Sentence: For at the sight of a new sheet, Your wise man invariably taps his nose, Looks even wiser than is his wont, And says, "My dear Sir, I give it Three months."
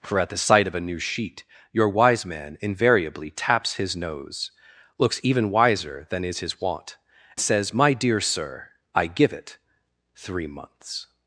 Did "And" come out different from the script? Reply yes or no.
yes